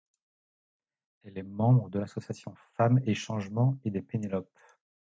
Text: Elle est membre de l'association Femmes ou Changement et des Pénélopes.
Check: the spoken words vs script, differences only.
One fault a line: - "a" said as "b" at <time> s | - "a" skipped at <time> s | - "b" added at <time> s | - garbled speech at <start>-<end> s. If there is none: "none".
- "ou" said as "et" at 3.0 s